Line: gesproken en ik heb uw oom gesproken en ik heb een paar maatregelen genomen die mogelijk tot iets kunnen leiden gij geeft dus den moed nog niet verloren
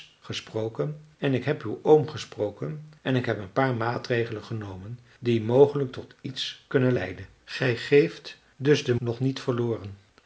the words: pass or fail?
fail